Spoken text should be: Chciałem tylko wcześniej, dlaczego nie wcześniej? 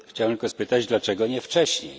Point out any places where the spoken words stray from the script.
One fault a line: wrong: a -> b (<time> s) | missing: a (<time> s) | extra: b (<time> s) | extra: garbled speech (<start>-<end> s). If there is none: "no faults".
wrong: wcześniej -> spytać (0.4 s)